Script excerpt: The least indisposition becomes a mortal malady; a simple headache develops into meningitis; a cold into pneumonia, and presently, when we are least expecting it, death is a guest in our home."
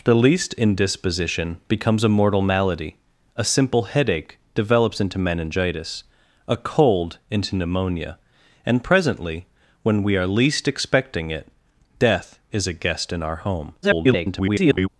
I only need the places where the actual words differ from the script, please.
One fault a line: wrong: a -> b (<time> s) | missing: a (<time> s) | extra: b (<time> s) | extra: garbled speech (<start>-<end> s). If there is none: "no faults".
extra: garbled speech (13.8-14.9 s)